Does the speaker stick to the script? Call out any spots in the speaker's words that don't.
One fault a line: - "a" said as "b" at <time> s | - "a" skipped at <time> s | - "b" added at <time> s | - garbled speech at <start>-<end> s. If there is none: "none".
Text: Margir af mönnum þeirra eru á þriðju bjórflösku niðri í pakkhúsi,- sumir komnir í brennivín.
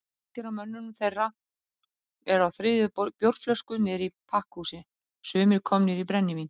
none